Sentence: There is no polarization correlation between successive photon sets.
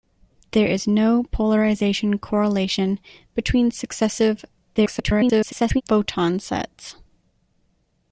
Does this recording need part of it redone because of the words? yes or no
yes